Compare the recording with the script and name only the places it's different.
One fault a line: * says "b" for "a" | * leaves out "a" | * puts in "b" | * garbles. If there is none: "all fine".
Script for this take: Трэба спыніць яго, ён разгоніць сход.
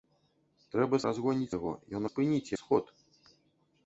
* says "разгоніць" for "спыніць"
* says "спыніць" for "разгоніць"